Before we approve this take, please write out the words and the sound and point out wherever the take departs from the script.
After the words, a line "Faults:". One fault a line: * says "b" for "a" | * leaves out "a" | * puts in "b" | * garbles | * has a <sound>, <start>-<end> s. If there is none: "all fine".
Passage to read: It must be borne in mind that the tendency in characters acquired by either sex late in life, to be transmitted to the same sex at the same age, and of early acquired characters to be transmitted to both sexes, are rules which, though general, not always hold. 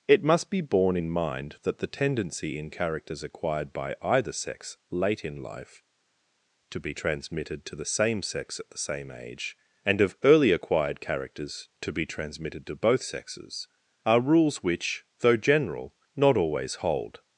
It must be borne in mind that the tendency in characters acquired by either sex late in life, to be transmitted to the same sex at the same age, and of early acquired characters to be transmitted to both sexes, are rules which, though general, not always hold.
Faults:
all fine